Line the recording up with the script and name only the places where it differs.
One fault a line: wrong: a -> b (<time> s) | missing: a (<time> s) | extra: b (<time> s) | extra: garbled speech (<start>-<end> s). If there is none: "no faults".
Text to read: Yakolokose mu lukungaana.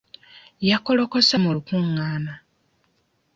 no faults